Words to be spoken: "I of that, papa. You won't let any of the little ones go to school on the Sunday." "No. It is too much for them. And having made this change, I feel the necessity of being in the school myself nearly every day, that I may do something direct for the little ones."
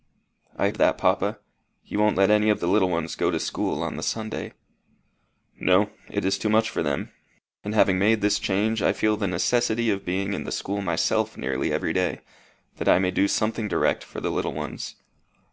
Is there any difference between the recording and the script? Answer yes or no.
no